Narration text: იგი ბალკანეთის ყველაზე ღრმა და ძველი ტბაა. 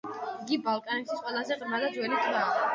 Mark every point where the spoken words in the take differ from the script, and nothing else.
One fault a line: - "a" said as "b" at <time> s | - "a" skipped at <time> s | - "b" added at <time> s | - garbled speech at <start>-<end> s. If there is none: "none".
none